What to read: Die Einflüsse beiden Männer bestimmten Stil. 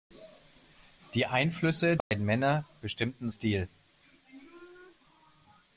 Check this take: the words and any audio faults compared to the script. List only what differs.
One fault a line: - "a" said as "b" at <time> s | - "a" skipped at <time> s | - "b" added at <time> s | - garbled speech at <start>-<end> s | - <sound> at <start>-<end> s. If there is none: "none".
- dropout at 2.0-2.1 s